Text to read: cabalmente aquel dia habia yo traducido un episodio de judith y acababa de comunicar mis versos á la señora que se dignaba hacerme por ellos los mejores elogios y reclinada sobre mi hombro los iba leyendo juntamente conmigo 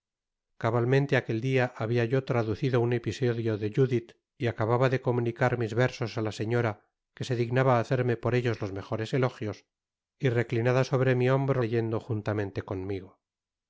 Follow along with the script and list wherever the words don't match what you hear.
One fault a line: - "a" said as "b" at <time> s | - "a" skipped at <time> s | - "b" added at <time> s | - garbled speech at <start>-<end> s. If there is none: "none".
- "los iba" skipped at 11.6 s